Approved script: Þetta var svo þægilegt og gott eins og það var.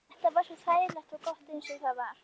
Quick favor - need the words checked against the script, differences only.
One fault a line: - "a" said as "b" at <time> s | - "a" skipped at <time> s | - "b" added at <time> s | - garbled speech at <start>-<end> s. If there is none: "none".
none